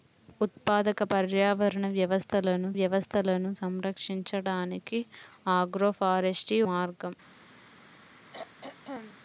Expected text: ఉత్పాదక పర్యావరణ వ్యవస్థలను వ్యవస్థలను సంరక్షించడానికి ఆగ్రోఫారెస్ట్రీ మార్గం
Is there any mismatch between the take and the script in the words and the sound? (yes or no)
yes